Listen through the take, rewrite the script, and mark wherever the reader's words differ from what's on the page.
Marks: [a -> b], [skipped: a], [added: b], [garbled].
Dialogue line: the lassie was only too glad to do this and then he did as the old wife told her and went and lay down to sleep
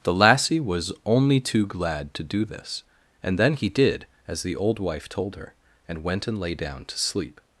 the lassie was only too glad to do this and then he did as the old wife told her and went and lay down to sleep